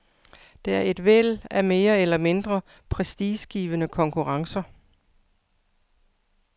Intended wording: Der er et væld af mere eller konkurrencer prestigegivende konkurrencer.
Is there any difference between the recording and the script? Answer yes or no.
yes